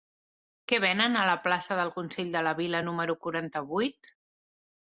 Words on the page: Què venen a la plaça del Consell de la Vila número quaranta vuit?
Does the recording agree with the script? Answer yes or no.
yes